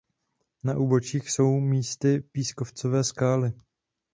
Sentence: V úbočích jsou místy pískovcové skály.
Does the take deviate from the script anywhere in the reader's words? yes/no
yes